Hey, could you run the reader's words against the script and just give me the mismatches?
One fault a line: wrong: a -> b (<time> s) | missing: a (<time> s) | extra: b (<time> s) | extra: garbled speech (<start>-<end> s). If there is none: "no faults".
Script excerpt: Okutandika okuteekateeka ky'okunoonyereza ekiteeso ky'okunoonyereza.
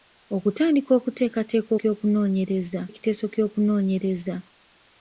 no faults